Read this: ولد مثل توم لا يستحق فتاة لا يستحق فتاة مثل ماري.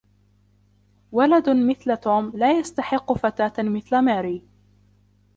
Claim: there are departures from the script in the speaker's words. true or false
true